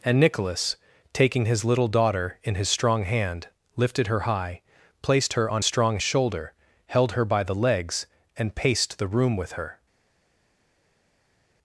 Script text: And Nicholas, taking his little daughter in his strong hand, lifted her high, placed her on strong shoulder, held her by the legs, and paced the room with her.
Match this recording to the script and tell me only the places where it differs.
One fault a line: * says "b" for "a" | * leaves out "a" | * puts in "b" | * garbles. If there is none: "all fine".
all fine